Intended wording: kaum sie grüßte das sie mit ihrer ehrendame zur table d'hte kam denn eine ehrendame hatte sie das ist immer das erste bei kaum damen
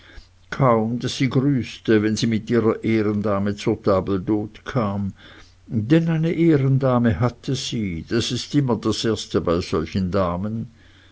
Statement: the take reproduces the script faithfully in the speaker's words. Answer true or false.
false